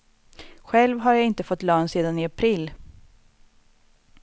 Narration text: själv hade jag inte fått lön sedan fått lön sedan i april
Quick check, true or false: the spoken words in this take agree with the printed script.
false